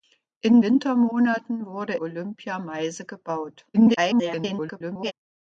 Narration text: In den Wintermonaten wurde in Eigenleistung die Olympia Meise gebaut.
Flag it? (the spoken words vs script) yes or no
yes